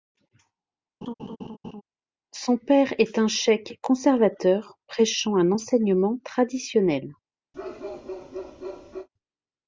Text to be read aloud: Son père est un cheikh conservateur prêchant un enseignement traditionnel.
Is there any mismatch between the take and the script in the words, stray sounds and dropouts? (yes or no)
yes